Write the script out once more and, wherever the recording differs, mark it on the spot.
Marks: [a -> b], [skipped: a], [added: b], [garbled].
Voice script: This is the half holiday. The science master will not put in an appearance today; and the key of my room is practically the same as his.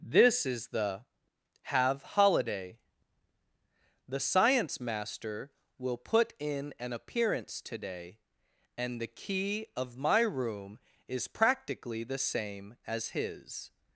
This is the [half -> have] holiday. The science master will [skipped: not] put in an appearance today; and the key of my room is practically the same as his.